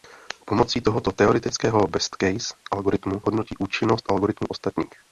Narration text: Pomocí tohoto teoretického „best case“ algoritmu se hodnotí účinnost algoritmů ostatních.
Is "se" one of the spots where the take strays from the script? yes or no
yes